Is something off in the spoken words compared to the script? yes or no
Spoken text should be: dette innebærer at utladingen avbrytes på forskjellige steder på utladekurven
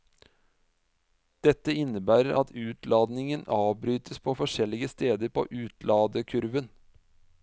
no